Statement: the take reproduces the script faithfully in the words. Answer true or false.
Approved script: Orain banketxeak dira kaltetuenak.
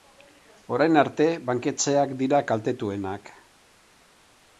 false